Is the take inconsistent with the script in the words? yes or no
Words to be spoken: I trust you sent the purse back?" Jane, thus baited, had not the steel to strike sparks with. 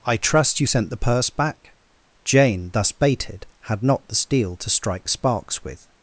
no